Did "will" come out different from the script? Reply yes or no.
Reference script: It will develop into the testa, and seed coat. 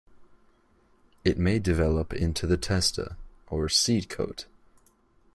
yes